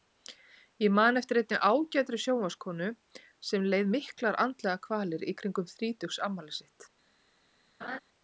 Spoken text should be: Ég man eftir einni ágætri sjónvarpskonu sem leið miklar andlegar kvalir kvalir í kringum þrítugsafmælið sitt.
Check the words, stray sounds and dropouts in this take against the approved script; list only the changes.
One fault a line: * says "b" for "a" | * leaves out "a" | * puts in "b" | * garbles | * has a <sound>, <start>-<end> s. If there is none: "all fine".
* leaves out "kvalir"
* has a laugh, 7.8-8.0 s